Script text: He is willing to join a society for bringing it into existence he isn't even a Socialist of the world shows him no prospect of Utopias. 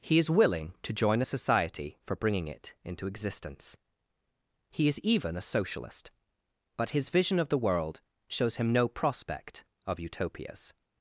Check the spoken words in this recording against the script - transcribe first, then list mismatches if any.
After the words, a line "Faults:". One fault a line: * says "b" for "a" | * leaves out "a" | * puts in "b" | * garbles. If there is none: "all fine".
He is willing to join a society for bringing it into existence he is even a Socialist but his vision of the world shows him no prospect of Utopias.
Faults:
* says "is" for "isn't"
* puts in "but his vision"